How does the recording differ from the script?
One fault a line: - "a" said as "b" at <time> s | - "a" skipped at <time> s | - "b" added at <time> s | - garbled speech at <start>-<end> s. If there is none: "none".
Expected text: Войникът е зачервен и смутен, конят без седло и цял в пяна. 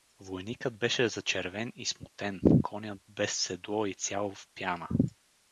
- "е" said as "беше" at 0.8 s